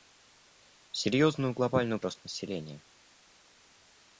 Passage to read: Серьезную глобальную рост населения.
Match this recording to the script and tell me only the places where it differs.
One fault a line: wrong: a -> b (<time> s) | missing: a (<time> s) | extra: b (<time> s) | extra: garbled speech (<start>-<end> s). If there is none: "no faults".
no faults